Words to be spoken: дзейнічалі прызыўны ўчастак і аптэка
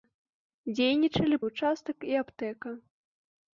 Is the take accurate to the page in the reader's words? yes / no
no